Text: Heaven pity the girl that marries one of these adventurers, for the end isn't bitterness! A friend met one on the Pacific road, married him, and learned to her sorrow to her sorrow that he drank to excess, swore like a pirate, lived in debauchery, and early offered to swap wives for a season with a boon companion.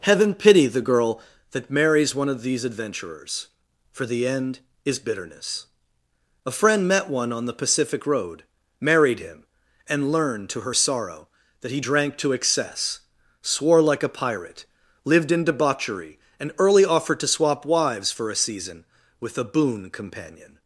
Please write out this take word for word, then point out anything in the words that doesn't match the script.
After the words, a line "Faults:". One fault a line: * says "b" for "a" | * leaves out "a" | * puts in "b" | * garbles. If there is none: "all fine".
Heaven pity the girl that marries one of these adventurers, for the end is bitterness! A friend met one on the Pacific road, married him, and learned to her sorrow that he drank to excess, swore like a pirate, lived in debauchery, and early offered to swap wives for a season with a boon companion.
Faults:
* says "is" for "isn't"
* leaves out "to her sorrow"